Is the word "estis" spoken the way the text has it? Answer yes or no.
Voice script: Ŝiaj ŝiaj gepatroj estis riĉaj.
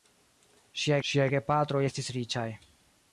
yes